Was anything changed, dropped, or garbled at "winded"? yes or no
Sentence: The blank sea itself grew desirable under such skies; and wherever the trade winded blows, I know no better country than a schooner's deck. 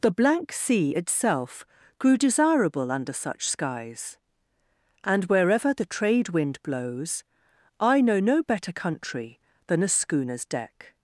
yes